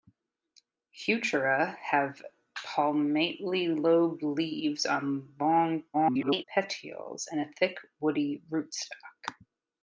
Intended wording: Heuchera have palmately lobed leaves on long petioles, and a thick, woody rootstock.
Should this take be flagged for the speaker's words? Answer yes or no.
yes